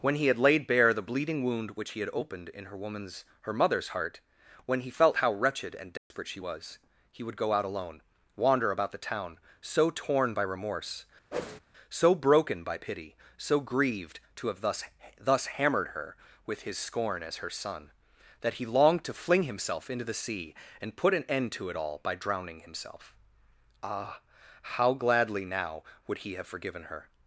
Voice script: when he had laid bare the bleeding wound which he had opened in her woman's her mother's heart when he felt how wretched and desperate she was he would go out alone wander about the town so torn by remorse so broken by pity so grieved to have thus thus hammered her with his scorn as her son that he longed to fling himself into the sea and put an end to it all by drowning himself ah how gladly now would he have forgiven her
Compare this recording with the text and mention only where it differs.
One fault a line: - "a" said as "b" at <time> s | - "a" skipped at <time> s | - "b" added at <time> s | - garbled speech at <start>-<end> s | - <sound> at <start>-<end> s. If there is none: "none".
- dropout at 6.0-6.1 s
- whoosh at 11.3-11.6 s